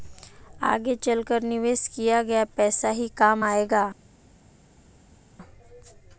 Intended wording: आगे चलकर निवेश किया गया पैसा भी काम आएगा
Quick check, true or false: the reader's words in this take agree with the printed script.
false